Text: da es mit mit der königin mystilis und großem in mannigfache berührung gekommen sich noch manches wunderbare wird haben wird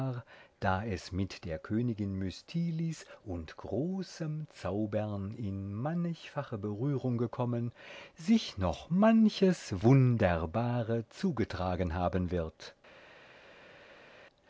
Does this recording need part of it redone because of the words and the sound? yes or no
yes